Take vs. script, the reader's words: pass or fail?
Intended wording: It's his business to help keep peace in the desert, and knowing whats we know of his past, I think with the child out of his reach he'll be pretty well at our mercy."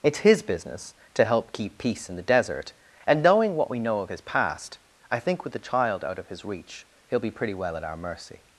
fail